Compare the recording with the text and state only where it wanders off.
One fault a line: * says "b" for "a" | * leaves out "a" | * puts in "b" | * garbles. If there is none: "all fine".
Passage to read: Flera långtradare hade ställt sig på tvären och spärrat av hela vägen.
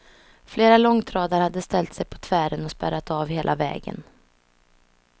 all fine